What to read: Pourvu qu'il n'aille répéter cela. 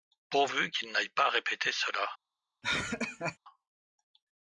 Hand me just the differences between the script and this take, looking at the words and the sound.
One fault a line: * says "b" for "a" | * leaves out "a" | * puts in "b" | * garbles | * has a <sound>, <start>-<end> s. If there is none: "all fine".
* puts in "pas"
* has a laugh, 2.6-3.4 s